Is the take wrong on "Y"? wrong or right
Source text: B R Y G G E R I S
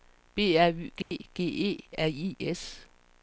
right